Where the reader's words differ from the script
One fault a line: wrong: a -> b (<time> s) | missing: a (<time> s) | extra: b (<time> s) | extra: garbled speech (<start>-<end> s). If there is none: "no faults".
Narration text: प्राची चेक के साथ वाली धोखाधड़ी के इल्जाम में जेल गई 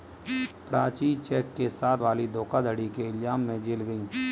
no faults